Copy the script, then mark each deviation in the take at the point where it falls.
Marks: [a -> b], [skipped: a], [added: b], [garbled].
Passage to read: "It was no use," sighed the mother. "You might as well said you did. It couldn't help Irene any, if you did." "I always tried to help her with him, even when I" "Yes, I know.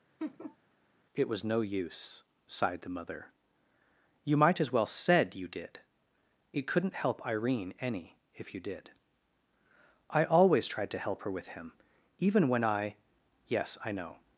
"It was no use," sighed the mother. "You might as well said you did. It couldn't help Irene any, if you did." "I always tried to help her with him, even when I" "Yes, I know.